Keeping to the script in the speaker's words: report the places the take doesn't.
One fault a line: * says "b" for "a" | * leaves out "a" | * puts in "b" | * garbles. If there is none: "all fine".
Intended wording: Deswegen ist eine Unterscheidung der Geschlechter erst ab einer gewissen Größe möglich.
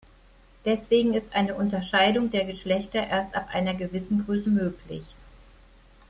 all fine